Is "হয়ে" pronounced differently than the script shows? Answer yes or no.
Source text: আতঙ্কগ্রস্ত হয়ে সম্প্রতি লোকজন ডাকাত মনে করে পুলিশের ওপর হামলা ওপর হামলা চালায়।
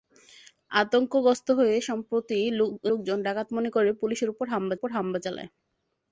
no